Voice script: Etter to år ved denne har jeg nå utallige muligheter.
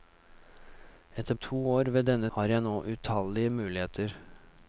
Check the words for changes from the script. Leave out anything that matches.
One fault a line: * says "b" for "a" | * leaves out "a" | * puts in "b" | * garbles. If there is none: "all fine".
all fine